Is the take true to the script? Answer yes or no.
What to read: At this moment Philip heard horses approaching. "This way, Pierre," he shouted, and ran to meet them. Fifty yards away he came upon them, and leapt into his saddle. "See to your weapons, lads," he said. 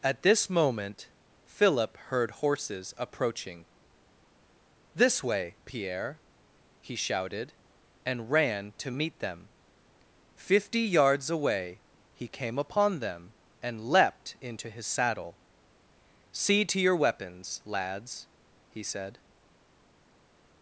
yes